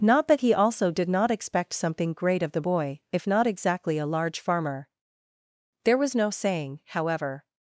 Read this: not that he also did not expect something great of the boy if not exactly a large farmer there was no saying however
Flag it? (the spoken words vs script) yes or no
no